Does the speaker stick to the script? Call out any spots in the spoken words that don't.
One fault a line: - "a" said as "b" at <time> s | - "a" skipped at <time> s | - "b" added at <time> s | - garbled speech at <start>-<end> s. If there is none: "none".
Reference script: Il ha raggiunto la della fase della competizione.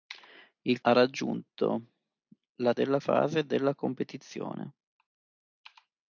none